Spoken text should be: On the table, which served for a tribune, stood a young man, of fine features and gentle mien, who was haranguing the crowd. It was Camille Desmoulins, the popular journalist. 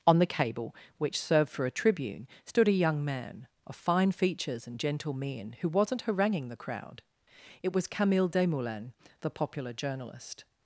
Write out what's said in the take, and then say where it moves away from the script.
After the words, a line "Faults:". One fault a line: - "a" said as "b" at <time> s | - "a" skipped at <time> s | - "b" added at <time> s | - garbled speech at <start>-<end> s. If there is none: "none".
On the cable, which served for a tribune, stood a young man, of fine features and gentle mien, who wasn't haranguing the crowd. It was Camille Desmoulins, the popular journalist.
Faults:
- "table" said as "cable" at 0.2 s
- "was" said as "wasn't" at 5.7 s